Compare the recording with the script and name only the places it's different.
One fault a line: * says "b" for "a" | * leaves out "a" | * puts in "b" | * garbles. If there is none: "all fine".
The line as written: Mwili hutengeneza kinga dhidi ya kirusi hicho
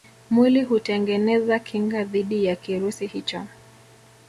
all fine